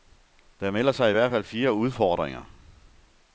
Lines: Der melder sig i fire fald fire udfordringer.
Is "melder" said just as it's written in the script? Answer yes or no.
yes